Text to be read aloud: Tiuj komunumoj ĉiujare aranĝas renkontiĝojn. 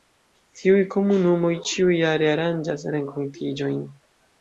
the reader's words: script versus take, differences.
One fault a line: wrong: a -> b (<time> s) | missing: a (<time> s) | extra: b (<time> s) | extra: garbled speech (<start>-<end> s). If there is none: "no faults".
no faults